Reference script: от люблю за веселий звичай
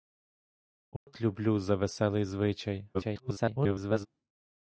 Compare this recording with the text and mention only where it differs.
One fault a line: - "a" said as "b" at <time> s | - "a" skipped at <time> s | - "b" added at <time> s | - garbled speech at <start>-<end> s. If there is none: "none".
- garbled speech at 2.9-4.1 s